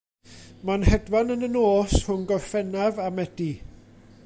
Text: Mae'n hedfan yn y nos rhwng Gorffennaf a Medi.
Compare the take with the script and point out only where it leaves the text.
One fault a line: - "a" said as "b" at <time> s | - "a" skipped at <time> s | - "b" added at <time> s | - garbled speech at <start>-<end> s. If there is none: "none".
none